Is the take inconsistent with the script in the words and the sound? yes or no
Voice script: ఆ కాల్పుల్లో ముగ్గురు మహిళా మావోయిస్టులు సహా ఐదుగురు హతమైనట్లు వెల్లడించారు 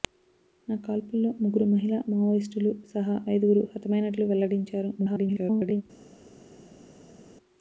yes